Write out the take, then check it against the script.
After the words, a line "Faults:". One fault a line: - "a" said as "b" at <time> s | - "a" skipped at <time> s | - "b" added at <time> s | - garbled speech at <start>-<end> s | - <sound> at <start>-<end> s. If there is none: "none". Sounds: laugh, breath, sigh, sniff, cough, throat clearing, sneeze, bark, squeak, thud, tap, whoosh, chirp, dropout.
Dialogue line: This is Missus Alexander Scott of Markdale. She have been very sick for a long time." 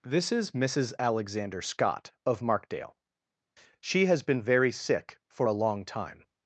This is Missus Alexander Scott of Markdale. She has been very sick for a long time."
Faults:
- "have" said as "has" at 4.1 s